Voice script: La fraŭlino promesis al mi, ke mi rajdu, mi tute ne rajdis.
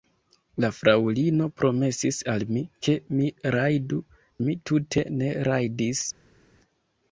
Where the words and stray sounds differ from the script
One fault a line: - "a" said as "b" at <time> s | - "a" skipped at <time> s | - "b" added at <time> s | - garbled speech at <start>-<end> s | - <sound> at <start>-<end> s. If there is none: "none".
none